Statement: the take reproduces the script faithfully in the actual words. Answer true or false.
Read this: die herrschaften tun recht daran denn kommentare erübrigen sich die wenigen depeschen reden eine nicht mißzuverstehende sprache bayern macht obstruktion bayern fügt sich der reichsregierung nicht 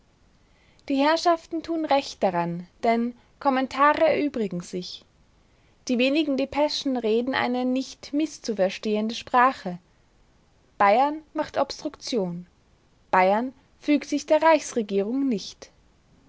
true